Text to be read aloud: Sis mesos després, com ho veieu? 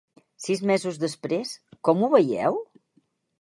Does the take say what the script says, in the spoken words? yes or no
yes